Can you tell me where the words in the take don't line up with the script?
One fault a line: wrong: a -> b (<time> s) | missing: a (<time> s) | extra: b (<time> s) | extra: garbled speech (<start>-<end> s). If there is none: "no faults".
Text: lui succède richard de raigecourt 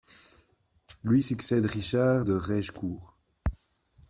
no faults